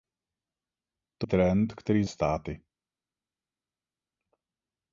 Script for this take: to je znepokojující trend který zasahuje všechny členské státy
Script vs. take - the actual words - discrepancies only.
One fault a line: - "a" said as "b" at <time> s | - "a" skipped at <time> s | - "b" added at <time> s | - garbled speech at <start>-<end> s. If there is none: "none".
- "je znepokojující" skipped at 1.3 s
- "zasahuje všechny členské" skipped at 2.0 s